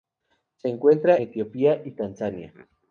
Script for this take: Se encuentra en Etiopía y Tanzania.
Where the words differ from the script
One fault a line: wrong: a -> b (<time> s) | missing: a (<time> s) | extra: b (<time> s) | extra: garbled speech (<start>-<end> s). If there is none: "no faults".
missing: en (1.1 s)